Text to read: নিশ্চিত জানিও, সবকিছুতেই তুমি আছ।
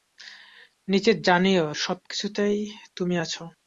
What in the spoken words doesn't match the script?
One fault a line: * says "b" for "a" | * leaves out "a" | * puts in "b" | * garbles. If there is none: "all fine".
all fine